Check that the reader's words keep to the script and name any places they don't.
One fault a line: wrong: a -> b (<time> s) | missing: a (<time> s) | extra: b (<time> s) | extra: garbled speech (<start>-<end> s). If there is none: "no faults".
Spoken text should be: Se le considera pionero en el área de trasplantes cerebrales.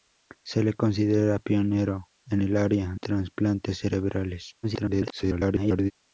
missing: de (3.0 s)
extra: garbled speech (4.6-5.9 s)